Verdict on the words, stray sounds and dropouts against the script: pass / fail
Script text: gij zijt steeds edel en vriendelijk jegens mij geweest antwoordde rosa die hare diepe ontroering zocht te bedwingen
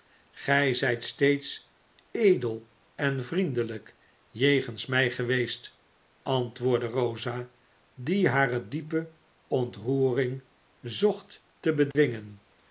fail